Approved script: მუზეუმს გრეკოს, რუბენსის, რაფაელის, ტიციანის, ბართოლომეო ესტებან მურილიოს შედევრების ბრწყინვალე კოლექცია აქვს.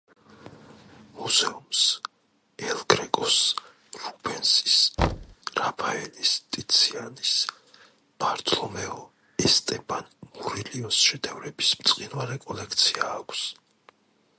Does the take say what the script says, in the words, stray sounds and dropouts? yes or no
no